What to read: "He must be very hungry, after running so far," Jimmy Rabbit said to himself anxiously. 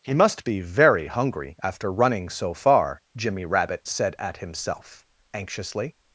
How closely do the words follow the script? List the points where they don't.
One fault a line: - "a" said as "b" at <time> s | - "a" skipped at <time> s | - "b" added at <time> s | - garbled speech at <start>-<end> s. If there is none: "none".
- "to" said as "at" at 4.2 s